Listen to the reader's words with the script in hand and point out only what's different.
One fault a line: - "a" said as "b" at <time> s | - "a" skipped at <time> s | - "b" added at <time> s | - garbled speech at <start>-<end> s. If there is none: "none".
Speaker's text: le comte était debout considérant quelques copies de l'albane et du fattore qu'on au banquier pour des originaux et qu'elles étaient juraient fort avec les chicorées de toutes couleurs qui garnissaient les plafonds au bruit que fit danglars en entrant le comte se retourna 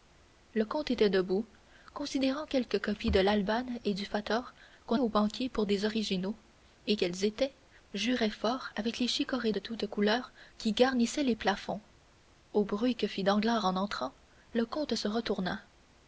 none